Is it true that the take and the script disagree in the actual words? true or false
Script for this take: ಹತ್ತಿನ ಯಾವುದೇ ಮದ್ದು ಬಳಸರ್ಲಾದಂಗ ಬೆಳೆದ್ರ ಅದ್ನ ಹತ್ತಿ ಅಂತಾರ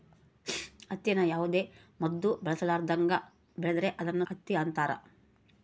false